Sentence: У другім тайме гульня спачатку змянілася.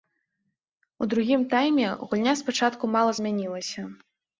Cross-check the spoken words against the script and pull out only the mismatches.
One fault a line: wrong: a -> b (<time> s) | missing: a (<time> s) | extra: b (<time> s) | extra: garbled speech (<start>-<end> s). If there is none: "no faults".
extra: мала (3.0 s)